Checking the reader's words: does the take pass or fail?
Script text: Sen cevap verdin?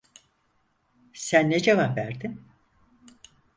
fail